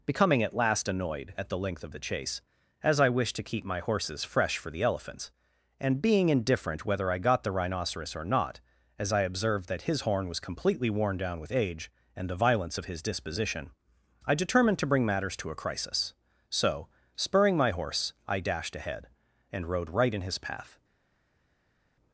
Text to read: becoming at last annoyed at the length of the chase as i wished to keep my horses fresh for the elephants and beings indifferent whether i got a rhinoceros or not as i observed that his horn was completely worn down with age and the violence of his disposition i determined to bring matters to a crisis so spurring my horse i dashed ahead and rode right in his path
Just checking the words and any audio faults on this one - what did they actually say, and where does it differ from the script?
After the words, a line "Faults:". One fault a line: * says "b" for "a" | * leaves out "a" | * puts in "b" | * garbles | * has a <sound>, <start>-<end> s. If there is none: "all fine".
becoming at last annoyed at the length of the chase as i wished to keep my horses fresh for the elephants and being indifferent whether i got the rhinoceros or not as i observed that his horn was completely worn down with age and the violence of his disposition i determined to bring matters to a crisis so spurring my horse i dashed ahead and rode right in his path
Faults:
* says "being" for "beings"
* says "the" for "a"